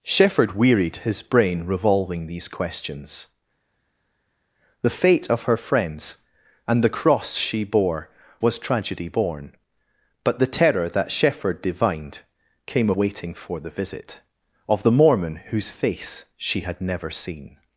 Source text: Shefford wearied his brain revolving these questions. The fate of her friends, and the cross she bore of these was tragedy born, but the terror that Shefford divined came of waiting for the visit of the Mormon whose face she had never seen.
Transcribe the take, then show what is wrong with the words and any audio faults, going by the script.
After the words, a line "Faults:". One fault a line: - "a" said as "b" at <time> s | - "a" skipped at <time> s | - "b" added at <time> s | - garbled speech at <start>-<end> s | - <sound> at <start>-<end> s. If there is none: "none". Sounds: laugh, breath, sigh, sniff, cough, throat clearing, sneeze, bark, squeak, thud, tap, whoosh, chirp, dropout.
Shefford wearied his brain revolving these questions. The fate of her friends, and the cross she bore was tragedy born, but the terror that Shefford divined came waiting for the visit of the Mormon whose face she had never seen.
Faults:
- "of these" skipped at 8.1 s
- "of" skipped at 12.9 s